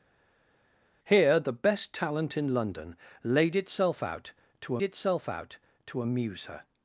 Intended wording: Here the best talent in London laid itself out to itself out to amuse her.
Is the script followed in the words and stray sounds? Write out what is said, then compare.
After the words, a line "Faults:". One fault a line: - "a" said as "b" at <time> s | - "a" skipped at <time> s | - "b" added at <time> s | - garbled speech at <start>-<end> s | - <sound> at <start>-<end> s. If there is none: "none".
Here the best talent in London laid itself out to itself out to amuse her.
Faults:
none